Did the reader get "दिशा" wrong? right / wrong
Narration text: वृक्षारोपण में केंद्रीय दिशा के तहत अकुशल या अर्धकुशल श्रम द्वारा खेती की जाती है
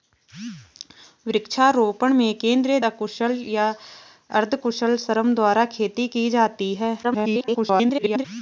wrong